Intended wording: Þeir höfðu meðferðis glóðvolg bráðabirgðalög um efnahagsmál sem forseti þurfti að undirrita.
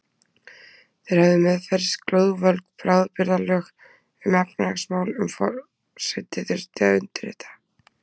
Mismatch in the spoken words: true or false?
false